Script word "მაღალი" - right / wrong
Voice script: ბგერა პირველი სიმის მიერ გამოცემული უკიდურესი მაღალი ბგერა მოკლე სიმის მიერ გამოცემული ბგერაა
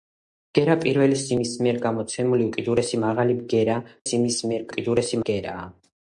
right